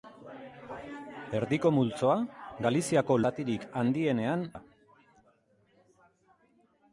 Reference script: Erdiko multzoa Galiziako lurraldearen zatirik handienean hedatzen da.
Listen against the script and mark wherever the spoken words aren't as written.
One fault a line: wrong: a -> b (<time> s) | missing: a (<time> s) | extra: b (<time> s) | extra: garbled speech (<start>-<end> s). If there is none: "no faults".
missing: lurraldearen (3.2 s)
missing: hedatzen (4.5 s)